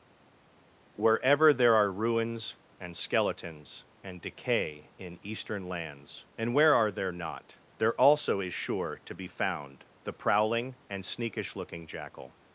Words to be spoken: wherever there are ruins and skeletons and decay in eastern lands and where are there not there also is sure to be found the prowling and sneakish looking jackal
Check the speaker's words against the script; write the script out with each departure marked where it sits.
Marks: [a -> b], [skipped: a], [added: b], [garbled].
wherever there are ruins and skeletons and decay in eastern lands and where are there not there also is sure to be found the prowling and sneakish looking jackal